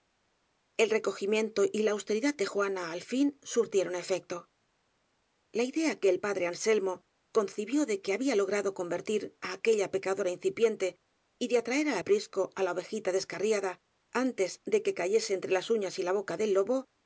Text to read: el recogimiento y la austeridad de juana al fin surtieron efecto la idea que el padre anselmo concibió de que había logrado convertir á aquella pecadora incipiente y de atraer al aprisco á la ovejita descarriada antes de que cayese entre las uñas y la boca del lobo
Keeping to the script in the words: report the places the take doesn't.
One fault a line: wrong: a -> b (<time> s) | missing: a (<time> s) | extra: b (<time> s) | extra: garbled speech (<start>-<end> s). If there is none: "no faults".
no faults